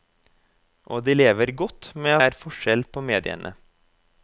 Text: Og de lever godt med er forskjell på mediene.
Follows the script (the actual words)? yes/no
yes